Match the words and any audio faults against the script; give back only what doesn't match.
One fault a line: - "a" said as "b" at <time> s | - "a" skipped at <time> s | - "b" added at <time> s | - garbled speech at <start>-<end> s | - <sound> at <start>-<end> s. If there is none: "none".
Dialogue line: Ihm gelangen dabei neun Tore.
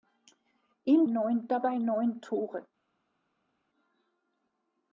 - "gelangen" said as "neun" at 1.1 s